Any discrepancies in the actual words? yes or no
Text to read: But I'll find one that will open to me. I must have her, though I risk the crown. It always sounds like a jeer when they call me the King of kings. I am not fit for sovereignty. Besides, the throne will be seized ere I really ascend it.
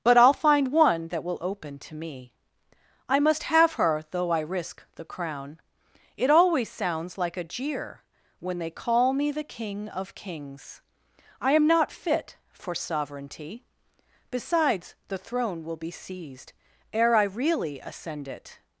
no